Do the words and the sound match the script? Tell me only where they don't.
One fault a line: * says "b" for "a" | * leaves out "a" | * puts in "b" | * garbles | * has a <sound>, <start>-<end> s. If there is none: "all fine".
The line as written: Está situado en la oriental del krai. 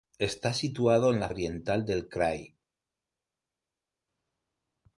all fine